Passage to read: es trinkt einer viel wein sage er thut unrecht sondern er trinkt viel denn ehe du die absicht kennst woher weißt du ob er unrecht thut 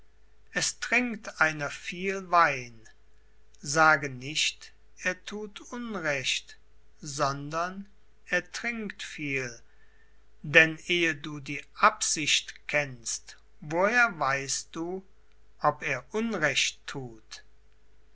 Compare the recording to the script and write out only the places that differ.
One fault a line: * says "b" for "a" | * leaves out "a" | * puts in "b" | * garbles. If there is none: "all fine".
* puts in "nicht"